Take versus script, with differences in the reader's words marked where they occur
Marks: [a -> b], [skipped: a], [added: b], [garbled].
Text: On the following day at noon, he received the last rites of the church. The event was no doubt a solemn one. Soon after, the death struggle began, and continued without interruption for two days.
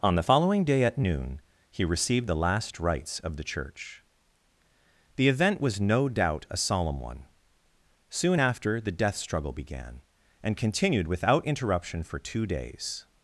On the following day at noon, he received the last rites of the church. The event was no doubt a solemn one. Soon after, the death struggle began, and continued without interruption for two days.